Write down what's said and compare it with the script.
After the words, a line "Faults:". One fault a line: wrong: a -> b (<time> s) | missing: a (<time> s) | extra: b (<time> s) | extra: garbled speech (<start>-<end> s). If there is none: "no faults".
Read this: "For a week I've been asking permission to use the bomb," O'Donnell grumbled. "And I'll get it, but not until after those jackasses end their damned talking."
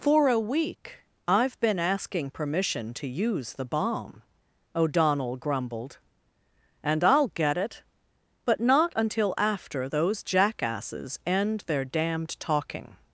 "For a week I've been asking permission to use the bomb," O'Donnell grumbled. "And I'll get it, but not until after those jackasses end their damned talking."
Faults:
no faults